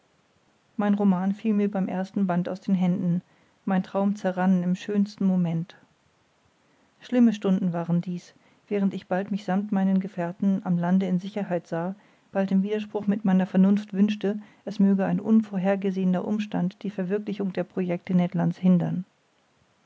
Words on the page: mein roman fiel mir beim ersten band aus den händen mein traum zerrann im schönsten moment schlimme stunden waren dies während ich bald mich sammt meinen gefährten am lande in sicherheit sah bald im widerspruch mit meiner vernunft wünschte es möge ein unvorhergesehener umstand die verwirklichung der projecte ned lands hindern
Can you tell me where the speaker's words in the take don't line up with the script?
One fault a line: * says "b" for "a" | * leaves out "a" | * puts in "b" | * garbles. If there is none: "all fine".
all fine